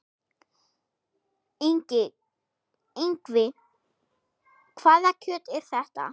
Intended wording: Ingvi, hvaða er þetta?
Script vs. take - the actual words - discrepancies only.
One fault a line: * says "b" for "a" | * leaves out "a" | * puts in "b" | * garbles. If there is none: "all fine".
* puts in "kjöt"